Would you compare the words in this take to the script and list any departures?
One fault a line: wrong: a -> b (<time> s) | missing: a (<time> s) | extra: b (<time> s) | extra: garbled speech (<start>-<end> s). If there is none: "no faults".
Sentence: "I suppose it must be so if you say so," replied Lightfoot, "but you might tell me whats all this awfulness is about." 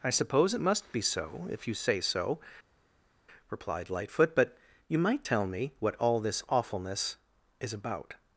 wrong: whats -> what (5.8 s)